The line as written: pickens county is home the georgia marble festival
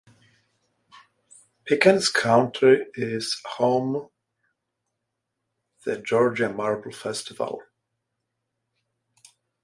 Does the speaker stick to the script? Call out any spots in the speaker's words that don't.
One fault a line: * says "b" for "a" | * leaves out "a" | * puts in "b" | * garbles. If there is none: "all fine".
all fine